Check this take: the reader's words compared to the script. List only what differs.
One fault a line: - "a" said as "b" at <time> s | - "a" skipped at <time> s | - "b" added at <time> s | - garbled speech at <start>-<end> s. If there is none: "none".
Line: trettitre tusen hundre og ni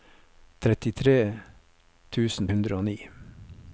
none